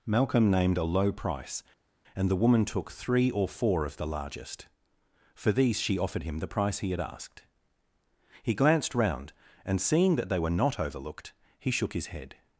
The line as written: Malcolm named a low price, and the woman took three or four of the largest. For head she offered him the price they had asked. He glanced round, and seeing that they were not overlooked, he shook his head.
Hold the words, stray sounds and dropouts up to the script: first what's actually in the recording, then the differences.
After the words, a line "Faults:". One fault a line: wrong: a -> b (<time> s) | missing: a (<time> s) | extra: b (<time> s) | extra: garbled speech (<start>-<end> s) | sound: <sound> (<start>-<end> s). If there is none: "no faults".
Malcolm named a low price, and the woman took three or four of the largest. For these she offered him the price he had asked. He glanced round, and seeing that they were not overlooked, he shook his head.
Faults:
wrong: head -> these (5.5 s)
wrong: they -> he (6.8 s)